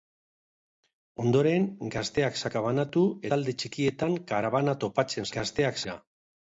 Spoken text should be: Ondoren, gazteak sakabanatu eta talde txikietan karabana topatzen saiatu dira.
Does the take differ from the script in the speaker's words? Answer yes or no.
yes